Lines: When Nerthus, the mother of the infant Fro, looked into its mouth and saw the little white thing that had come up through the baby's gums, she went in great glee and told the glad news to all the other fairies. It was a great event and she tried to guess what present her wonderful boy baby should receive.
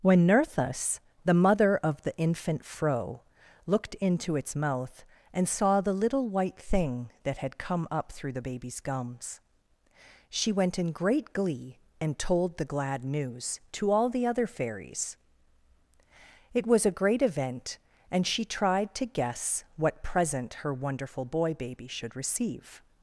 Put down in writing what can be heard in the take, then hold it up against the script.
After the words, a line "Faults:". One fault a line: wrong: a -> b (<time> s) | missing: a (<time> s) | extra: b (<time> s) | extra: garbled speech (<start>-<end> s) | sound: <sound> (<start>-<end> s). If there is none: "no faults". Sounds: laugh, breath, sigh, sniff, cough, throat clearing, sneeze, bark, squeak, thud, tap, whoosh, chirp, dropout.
When Nerthus, the mother of the infant Fro, looked into its mouth and saw the little white thing that had come up through the baby's gums, she went in great glee and told the glad news to all the other fairies. It was a great event and she tried to guess what present her wonderful boy baby should receive.
Faults:
no faults